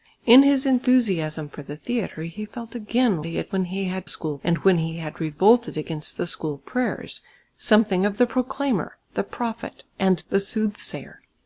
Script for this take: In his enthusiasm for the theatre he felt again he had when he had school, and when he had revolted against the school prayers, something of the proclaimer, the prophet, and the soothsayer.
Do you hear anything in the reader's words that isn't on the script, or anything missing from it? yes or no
no